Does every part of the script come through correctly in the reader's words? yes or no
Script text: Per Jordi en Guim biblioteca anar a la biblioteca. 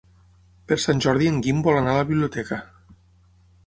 no